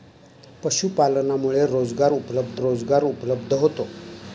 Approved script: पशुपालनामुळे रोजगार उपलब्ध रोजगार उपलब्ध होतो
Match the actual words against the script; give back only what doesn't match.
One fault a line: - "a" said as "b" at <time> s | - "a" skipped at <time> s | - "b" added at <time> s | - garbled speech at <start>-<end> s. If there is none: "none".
none